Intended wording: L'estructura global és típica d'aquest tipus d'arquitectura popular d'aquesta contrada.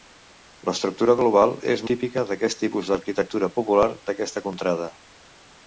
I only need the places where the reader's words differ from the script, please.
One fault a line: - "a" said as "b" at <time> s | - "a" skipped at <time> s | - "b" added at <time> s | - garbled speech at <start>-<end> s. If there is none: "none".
none